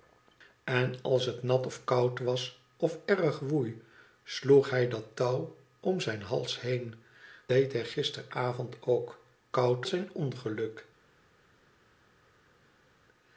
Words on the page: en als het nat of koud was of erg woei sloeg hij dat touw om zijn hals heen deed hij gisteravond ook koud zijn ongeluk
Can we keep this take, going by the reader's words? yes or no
yes